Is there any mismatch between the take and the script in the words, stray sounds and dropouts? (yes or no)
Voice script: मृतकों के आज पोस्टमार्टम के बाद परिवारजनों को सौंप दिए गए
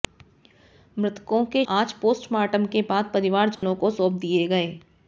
yes